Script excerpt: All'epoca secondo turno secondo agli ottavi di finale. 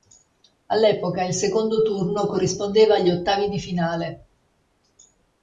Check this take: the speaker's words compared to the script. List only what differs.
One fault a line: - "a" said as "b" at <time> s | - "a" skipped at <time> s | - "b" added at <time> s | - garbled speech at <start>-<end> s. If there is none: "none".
- "il" added at 1.2 s
- "secondo" said as "corrispondeva" at 2.2 s